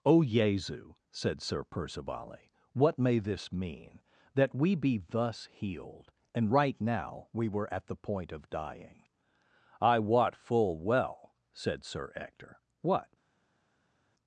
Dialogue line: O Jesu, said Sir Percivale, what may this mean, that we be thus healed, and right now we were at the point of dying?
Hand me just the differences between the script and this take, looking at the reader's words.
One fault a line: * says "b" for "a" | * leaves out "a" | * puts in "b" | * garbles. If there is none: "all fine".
* puts in "I wot full well said Sir Ector what"